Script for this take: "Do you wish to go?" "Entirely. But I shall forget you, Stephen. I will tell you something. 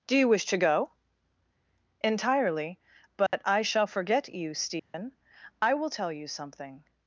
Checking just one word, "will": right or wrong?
right